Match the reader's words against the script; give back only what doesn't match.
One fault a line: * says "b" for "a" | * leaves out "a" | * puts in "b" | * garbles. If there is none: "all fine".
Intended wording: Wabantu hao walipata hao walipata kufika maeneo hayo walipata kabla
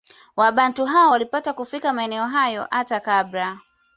* leaves out "hao walipata"
* says "hata" for "walipata"